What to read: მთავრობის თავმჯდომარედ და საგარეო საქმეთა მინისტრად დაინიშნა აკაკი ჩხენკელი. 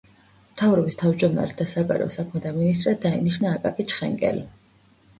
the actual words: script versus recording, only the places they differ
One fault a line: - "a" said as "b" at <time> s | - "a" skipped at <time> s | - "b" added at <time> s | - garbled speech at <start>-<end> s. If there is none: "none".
none